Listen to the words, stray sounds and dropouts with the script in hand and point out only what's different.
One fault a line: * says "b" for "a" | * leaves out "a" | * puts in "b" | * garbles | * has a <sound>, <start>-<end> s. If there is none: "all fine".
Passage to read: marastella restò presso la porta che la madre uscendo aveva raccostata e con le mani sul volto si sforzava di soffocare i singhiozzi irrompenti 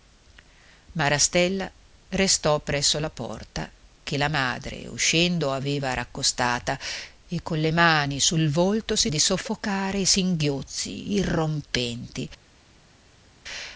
* leaves out "sforzava"